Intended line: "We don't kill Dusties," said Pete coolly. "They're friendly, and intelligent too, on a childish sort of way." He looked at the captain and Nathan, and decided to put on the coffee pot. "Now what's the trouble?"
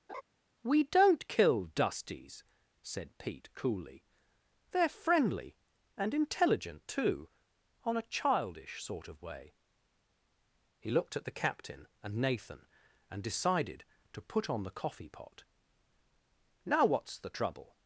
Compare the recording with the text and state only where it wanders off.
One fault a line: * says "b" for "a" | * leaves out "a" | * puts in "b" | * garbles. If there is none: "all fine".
all fine